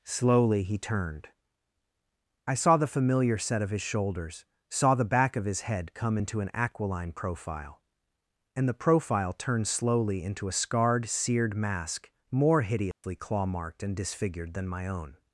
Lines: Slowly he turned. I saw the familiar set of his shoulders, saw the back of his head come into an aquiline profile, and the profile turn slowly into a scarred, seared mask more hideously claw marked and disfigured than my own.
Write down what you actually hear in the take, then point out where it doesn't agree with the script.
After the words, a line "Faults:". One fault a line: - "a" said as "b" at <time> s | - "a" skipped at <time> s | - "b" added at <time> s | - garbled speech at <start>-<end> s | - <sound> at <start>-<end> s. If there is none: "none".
Slowly he turned. I saw the familiar set of his shoulders, saw the back of his head come into an aquiline profile, and the profile turned slowly into a scarred, seared mask more hideously claw marked and disfigured than my own.
Faults:
- "turn" said as "turned" at 9.3 s
- dropout at 12.9-13.0 s